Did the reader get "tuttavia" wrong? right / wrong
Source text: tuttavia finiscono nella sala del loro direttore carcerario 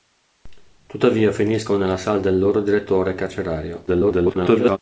right